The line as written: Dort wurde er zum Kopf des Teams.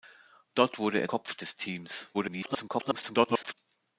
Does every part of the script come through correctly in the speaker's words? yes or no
no